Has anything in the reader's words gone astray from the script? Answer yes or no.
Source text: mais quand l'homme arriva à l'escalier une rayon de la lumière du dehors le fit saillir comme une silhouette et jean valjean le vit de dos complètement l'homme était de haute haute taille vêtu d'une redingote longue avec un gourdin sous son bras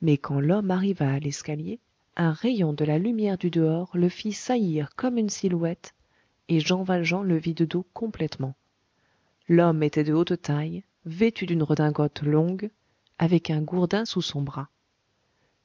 yes